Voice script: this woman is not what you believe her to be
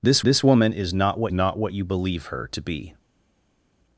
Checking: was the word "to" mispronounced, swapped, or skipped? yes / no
no